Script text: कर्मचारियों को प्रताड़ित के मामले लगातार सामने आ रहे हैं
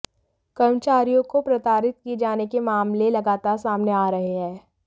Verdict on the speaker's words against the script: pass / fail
fail